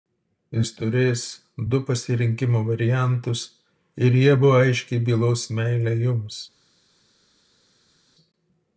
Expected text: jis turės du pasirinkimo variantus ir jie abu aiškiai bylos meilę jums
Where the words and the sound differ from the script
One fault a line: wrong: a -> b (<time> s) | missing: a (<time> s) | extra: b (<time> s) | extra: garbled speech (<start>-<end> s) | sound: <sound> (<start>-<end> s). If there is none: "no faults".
no faults